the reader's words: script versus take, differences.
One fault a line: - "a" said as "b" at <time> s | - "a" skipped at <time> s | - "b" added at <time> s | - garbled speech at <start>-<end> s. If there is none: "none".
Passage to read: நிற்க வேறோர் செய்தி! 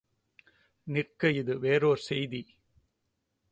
- "இது" added at 1.3 s